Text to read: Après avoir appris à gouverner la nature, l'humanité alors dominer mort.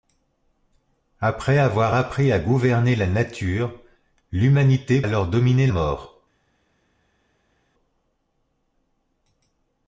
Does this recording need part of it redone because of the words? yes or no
no